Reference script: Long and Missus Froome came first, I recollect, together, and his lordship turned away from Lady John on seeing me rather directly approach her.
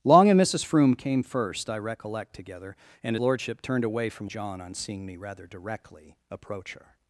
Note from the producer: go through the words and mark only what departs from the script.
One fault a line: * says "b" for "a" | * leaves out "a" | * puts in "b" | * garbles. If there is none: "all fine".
* leaves out "his"
* leaves out "Lady"